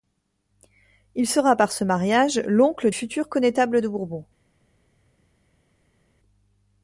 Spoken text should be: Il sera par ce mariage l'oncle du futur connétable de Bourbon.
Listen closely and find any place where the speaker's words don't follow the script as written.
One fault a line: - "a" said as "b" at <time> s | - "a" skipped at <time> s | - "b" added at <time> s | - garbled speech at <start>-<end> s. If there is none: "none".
- "du" skipped at 2.9 s